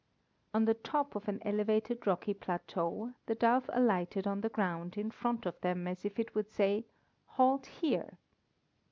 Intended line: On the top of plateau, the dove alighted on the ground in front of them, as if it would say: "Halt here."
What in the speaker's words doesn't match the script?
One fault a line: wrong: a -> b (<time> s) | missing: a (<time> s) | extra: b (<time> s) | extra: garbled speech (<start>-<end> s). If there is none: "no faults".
extra: an elevated rocky (1.3 s)